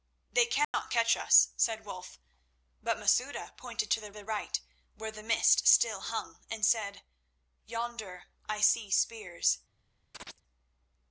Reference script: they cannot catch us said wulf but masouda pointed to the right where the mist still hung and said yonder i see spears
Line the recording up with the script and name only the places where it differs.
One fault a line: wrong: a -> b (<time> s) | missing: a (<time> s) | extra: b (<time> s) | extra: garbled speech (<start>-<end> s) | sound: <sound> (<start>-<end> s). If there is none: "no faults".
sound: dropout (0.6-0.7 s)
extra: the (4.1 s)
sound: chirp (10.1-10.4 s)